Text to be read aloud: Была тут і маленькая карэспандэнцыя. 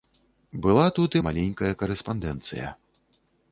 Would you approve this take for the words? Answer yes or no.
yes